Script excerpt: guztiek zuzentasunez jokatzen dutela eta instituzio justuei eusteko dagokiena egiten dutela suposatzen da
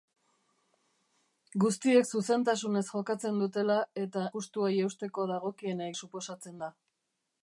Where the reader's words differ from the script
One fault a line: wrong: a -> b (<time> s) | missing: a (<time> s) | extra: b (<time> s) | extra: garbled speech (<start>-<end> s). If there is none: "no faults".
missing: instituzio (4.2 s)
missing: egiten dutela (5.9 s)